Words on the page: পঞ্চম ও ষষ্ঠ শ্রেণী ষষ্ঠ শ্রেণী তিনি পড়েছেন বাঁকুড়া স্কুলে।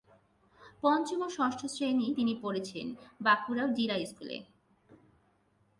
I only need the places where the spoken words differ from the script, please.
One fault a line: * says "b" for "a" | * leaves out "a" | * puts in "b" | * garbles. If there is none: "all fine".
* leaves out "ষষ্ঠ শ্রেণী"
* puts in "জিলা"